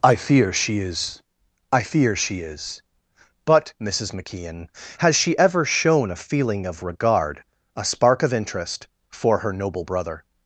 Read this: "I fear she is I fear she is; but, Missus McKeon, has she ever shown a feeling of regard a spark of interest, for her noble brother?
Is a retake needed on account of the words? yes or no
no